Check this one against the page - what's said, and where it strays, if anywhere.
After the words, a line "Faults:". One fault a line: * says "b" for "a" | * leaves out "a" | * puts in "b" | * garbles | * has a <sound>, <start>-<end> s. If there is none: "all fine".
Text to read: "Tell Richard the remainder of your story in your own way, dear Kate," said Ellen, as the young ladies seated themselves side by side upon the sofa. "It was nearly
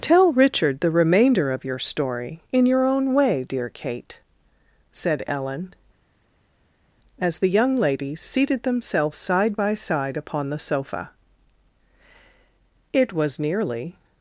"Tell Richard the remainder of your story in your own way, dear Kate," said Ellen, as the young ladies seated themselves side by side upon the sofa. "It was nearly
Faults:
all fine